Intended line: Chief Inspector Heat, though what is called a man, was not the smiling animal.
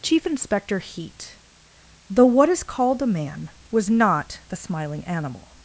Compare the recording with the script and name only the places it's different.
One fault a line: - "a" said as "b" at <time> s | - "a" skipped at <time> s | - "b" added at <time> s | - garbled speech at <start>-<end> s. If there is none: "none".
none